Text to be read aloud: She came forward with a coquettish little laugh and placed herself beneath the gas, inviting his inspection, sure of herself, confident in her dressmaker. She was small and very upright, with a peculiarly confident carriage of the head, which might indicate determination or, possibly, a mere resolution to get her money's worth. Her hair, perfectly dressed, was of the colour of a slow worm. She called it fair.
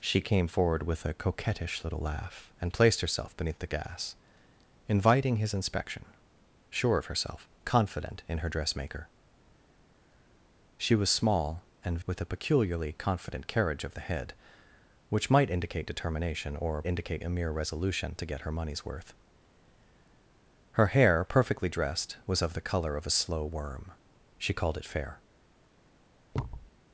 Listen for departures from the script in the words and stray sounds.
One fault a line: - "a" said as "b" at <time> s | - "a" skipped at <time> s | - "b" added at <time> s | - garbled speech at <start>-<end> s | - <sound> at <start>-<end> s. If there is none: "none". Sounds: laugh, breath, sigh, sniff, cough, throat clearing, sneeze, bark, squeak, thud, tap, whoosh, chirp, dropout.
- "very upright" skipped at 12.0 s
- "possibly" said as "indicate" at 16.8 s
- thud at 26.3-26.7 s